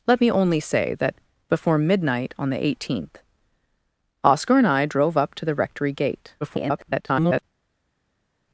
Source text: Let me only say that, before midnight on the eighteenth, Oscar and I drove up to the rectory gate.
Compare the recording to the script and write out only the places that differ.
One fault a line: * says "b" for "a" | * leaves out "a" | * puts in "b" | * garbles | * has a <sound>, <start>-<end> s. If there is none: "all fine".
* garbles